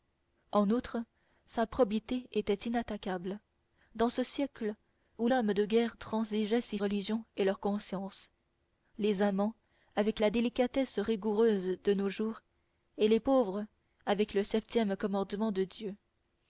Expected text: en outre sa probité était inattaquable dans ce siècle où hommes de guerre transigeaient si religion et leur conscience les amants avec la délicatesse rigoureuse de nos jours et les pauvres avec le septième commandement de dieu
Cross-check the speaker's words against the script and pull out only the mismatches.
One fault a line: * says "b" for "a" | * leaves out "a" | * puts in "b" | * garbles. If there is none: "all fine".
all fine